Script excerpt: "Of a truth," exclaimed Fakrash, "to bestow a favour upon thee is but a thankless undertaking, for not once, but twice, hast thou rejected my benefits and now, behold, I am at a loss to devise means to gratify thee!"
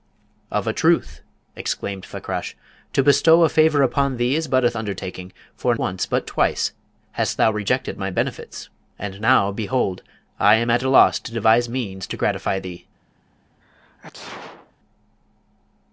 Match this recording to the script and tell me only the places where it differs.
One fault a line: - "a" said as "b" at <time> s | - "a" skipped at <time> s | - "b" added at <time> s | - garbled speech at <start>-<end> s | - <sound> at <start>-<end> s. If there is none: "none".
- "thankless" skipped at 4.7 s
- "not" skipped at 5.8 s
- sneeze at 13.6-14.7 s